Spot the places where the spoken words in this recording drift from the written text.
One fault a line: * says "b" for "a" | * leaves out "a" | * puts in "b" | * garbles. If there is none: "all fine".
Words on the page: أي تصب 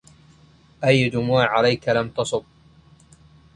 * puts in "دموع عليك لم"